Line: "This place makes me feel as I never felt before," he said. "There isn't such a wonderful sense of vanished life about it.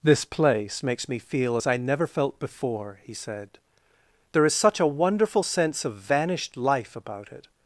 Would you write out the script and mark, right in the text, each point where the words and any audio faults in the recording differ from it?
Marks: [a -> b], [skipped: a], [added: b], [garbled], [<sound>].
"This place makes me feel as I never felt before," he said. "There [isn't -> is] such a wonderful sense of vanished life about it.